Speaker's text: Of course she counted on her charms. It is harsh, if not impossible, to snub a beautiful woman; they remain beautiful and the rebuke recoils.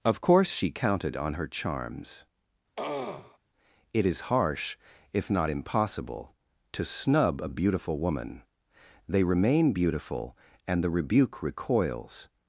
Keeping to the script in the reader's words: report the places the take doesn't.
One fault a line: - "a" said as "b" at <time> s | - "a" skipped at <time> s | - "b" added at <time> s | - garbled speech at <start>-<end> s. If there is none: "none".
none